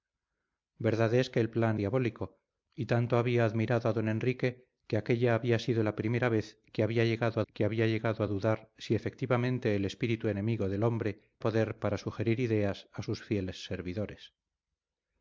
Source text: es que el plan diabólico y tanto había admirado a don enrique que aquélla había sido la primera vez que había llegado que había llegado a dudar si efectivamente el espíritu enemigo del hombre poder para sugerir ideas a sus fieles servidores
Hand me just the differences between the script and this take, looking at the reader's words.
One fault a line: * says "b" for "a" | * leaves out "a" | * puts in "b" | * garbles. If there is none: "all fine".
all fine